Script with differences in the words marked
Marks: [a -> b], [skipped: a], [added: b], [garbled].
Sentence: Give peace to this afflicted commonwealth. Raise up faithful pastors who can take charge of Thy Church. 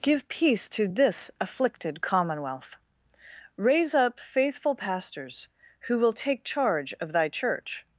Give peace to this afflicted commonwealth. Raise up faithful pastors who [can -> will] take charge of Thy Church.